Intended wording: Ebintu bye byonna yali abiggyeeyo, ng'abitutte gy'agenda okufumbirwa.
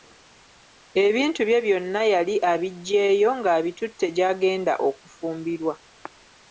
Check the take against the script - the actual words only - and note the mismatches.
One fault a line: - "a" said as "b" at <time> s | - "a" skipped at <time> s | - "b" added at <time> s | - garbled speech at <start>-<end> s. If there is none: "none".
none